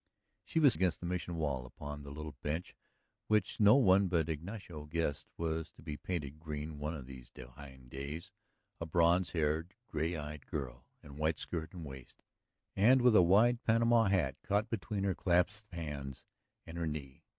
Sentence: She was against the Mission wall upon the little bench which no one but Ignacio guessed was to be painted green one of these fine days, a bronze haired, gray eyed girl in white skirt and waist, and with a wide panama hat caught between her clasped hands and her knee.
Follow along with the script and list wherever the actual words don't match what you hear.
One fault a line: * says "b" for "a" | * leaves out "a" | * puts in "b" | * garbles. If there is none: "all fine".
all fine